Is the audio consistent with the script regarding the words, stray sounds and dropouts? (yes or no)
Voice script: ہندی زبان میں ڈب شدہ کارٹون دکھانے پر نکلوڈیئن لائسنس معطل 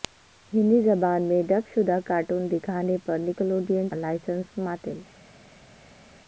yes